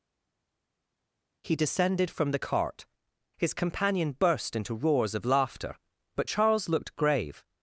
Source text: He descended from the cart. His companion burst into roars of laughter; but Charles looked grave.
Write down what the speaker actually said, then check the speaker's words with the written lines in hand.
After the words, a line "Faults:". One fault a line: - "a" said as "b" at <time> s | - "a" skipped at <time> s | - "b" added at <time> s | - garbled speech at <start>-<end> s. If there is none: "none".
He descended from the cart. His companion burst into roars of laughter; but Charles looked grave.
Faults:
none